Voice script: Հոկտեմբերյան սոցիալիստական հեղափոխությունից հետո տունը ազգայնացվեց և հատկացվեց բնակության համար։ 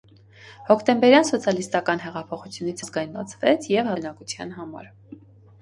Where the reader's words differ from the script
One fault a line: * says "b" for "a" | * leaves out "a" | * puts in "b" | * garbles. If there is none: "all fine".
* leaves out "հետո տունը"
* leaves out "հատկացվեց"